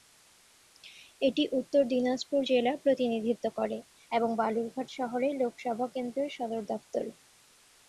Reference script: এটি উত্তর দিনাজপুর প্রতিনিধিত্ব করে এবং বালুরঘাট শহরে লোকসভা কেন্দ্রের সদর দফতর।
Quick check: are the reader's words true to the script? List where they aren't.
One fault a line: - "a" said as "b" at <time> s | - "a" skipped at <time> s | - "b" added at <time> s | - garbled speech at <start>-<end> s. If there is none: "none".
- "জেলা" added at 2.5 s